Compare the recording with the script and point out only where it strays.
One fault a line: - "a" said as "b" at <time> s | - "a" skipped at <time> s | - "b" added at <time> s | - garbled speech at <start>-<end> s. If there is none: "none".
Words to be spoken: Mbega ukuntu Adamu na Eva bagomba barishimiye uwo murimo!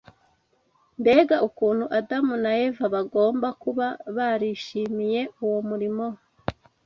- "kuba" added at 3.6 s